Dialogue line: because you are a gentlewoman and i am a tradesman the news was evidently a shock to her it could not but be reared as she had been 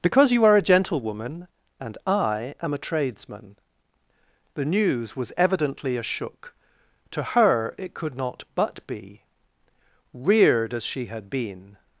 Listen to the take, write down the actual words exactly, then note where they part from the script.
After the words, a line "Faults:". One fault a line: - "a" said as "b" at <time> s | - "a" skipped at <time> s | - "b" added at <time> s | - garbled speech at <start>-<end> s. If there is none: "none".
because you are a gentlewoman and i am a tradesman the news was evidently a shook to her it could not but be reared as she had been
Faults:
- "shock" said as "shook" at 6.0 s